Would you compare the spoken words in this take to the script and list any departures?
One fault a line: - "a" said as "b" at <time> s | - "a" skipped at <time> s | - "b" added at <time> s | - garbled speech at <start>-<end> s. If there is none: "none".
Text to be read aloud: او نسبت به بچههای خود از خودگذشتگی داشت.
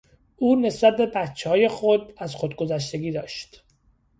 none